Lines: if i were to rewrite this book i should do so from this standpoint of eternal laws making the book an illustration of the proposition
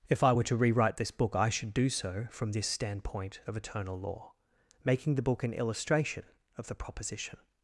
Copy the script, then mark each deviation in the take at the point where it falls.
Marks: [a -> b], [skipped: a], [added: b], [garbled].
if i were to rewrite this book i should do so from this standpoint of eternal [laws -> law] making the book an illustration of the proposition